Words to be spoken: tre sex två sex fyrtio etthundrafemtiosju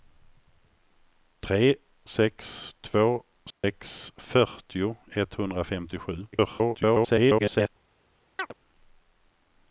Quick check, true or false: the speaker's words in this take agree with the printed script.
false